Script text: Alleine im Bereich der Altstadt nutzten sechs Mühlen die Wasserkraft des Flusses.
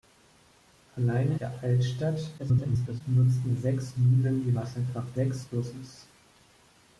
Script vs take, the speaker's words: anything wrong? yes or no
yes